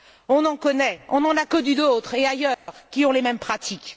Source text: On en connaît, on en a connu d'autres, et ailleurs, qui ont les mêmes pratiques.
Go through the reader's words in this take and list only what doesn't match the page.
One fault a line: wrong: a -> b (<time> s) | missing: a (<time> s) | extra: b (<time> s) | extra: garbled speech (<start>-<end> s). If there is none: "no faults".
no faults